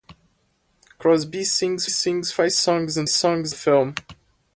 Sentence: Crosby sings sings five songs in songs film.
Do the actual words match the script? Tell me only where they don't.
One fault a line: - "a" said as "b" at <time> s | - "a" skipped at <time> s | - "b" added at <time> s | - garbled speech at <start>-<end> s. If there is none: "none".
none